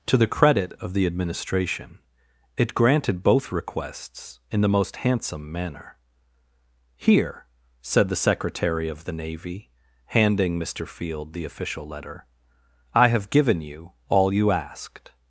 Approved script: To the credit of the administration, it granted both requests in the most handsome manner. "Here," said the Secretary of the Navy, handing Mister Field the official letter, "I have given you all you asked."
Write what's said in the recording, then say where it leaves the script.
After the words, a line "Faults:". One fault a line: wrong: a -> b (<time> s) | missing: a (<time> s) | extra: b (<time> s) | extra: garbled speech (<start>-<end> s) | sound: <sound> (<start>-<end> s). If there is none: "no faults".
To the credit of the administration, it granted both requests in the most handsome manner. "Here," said the Secretary of the Navy, handing Mister Field the official letter, "I have given you all you asked."
Faults:
no faults